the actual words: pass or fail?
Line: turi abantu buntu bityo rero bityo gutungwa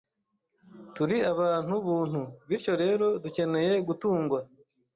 fail